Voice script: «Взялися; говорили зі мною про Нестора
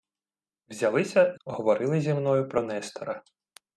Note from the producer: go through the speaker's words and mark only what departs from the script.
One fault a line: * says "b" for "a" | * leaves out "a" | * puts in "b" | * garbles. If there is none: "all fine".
all fine